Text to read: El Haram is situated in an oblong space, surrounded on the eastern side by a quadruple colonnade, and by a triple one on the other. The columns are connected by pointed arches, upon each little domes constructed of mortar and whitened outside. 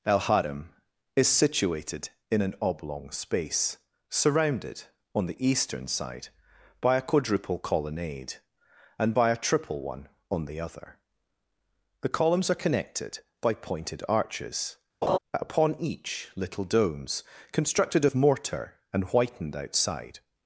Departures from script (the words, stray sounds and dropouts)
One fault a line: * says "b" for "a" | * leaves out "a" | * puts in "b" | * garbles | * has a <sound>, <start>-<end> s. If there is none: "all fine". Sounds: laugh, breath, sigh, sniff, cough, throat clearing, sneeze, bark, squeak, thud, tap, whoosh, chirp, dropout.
* has a laugh, 15.0-15.2 s